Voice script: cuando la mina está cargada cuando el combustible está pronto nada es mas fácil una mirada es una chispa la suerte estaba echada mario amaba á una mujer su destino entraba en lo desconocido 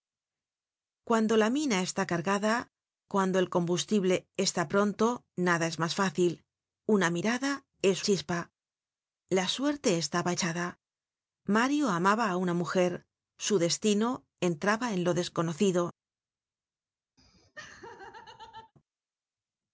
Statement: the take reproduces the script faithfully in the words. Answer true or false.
false